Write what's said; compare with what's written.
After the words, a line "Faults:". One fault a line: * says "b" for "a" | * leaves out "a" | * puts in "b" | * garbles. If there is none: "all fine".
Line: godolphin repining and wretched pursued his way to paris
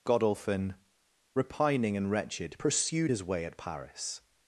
godolphin repining and wretched pursued his way at paris
Faults:
* says "at" for "to"